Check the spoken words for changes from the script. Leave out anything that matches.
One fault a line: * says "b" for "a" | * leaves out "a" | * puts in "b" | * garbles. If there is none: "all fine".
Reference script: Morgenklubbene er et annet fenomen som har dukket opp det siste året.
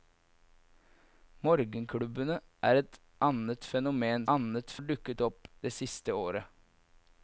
* says "annet" for "som"